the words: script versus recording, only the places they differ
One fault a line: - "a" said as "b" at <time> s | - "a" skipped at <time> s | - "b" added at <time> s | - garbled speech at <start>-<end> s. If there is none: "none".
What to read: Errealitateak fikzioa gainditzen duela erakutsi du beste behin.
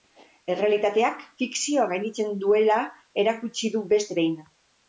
none